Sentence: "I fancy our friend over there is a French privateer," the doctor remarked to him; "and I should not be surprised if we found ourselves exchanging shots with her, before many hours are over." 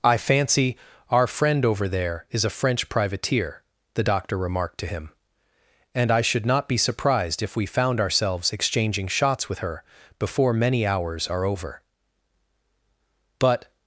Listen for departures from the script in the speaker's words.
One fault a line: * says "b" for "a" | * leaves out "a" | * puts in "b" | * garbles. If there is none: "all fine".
* puts in "But"